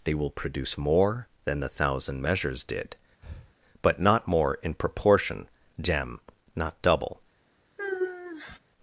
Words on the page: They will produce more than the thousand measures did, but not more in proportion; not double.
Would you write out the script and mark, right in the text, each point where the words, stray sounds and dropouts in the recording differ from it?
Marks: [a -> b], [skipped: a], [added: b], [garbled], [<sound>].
They will produce more than the thousand measures did, [breath] but not more in proportion; [added: gem] not double. [sigh]